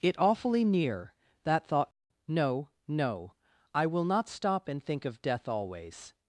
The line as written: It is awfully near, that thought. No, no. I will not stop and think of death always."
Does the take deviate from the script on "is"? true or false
true